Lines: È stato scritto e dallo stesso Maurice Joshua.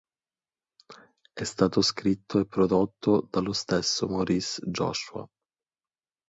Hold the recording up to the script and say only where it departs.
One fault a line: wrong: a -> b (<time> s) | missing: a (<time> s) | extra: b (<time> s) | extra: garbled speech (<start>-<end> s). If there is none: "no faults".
extra: prodotto (2.5 s)